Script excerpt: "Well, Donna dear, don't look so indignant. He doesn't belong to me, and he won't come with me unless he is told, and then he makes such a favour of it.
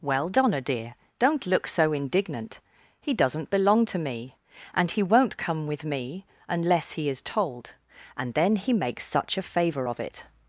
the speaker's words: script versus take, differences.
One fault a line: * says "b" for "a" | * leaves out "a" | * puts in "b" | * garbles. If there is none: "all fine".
all fine